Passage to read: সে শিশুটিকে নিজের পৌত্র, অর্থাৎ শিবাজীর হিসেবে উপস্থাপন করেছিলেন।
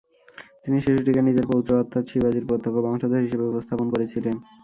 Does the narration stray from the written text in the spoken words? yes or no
yes